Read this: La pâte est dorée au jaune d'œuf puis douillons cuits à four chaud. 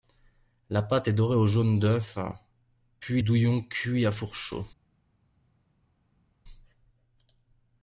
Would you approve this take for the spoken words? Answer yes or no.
yes